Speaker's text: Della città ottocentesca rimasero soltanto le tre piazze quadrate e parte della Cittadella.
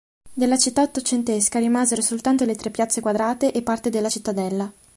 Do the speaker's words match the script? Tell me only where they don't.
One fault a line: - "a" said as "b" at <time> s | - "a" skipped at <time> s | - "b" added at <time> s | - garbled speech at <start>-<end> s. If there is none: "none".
none